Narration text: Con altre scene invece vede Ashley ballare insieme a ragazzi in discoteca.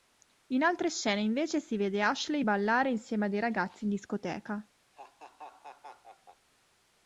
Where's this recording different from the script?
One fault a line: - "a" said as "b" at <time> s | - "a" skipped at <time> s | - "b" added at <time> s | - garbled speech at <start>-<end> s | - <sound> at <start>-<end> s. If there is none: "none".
- "Con" said as "In" at 0.5 s
- "si" added at 1.6 s
- "dei" added at 3.3 s
- laugh at 4.9-6.5 s